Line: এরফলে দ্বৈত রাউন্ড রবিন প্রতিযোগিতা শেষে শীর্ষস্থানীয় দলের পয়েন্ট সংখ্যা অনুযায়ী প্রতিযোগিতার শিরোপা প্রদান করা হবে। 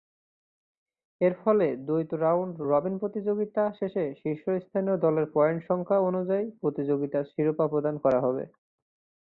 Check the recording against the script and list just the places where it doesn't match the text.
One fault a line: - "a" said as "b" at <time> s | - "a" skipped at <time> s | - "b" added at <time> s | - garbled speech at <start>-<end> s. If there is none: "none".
none